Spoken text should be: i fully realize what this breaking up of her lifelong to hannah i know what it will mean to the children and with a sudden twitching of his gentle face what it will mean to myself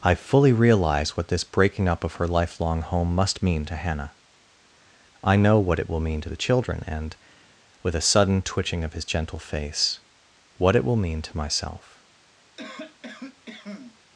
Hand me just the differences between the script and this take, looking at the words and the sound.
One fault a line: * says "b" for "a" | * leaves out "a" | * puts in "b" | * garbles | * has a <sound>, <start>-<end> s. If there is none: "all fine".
* puts in "home must mean"
* has a cough, 12.6-14.0 s